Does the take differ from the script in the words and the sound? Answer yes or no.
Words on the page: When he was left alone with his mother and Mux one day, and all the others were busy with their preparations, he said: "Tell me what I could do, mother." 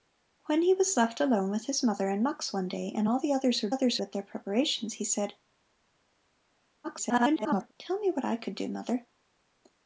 yes